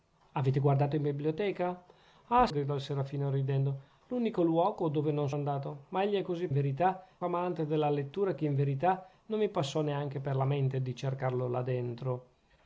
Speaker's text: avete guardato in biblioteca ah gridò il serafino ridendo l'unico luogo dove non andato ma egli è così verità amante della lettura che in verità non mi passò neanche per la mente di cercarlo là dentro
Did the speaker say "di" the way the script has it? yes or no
yes